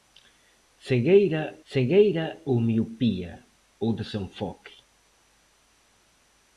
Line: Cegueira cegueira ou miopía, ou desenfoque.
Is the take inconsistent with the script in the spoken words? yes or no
no